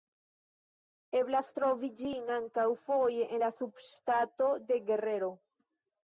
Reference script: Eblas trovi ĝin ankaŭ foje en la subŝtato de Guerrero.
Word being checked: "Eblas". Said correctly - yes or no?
yes